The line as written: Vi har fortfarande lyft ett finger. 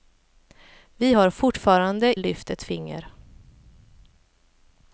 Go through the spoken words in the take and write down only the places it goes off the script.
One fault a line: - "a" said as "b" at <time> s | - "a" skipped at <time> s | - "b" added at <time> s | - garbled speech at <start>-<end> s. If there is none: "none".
none